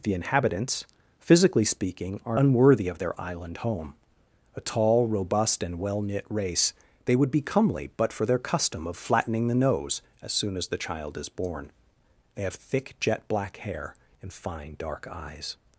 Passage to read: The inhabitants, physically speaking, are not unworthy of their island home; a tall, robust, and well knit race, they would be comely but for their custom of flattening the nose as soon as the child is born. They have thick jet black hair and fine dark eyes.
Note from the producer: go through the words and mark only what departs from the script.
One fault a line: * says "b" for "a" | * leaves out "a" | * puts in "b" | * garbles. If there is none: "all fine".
* leaves out "not"